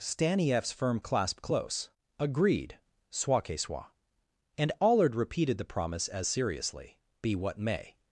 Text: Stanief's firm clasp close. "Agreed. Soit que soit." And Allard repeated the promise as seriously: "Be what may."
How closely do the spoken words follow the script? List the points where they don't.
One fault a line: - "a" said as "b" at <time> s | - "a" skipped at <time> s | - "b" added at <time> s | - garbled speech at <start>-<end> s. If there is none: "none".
none